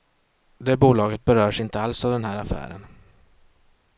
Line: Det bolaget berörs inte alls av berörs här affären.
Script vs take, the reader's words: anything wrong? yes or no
yes